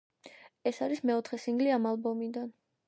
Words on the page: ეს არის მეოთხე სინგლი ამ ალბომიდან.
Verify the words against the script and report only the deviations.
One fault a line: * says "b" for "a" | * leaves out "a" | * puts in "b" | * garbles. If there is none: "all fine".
all fine